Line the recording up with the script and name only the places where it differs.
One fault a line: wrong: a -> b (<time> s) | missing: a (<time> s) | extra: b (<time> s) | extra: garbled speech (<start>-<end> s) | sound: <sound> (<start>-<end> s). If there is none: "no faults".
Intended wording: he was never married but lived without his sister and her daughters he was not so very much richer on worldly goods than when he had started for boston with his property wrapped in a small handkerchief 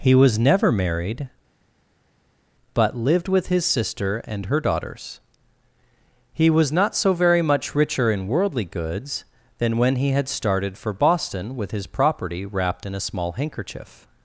wrong: without -> with (3.3 s)
wrong: on -> in (8.1 s)